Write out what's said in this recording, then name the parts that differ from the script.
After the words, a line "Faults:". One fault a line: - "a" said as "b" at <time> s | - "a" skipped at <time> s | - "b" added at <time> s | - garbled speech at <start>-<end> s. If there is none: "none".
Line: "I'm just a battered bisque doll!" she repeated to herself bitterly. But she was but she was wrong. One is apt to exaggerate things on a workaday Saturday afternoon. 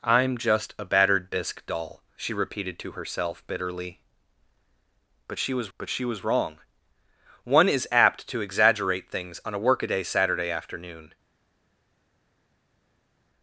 "I'm just a battered bisque doll!" she repeated to herself bitterly. But she was but she was wrong. One is apt to exaggerate things on a workaday Saturday afternoon.
Faults:
none